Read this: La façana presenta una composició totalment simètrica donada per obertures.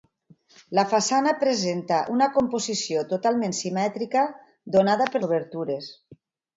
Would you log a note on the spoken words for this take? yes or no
no